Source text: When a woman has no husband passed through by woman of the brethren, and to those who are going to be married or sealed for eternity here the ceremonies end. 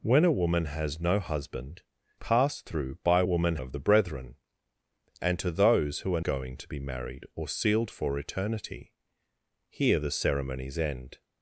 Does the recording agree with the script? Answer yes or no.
yes